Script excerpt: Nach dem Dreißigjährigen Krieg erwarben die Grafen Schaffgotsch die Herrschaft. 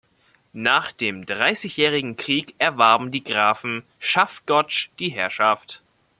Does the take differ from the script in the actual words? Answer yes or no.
no